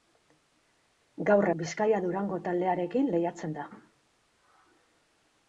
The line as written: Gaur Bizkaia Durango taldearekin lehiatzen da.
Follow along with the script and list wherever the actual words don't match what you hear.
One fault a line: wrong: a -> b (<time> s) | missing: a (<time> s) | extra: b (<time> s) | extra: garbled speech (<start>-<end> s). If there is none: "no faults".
no faults